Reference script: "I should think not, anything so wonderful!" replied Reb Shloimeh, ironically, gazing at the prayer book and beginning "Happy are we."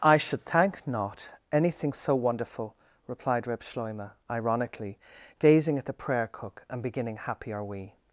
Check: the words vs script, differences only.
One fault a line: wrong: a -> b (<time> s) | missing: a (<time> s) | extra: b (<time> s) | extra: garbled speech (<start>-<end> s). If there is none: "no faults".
wrong: think -> thank (0.4 s)
wrong: book -> cook (6.3 s)